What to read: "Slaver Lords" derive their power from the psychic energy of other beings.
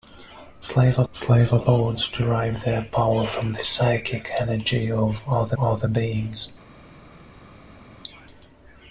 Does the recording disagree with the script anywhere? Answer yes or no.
yes